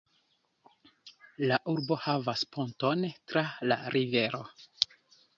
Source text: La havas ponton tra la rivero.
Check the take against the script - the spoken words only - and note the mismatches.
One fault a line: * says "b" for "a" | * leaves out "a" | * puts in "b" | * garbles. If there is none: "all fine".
* puts in "urbo"